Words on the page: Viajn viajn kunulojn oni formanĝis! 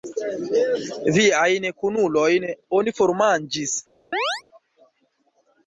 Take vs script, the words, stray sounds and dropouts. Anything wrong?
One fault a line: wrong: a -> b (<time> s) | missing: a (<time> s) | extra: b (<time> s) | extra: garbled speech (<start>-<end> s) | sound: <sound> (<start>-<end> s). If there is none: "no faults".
missing: viajn (1.7 s)
sound: chirp (4.1-4.4 s)